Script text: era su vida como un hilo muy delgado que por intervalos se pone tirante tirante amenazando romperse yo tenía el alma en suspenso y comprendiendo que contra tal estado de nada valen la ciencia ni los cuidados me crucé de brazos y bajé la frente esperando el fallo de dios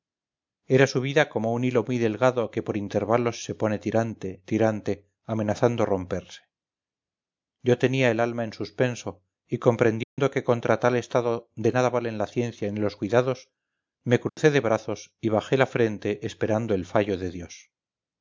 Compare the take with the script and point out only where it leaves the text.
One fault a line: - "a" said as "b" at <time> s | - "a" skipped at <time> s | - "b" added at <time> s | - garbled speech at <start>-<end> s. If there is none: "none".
none